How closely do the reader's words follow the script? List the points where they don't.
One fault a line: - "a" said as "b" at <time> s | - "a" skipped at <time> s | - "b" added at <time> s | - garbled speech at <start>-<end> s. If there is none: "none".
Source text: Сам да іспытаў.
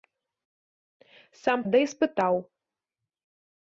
none